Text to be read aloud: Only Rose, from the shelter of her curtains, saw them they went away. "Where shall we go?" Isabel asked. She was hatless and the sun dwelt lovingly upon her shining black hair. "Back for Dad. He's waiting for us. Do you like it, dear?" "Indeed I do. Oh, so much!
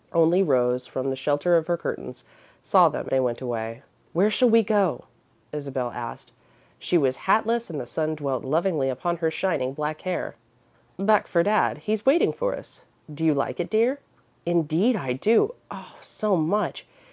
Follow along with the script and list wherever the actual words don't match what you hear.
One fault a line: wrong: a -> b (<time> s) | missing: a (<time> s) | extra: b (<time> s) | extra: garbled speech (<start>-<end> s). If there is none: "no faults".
no faults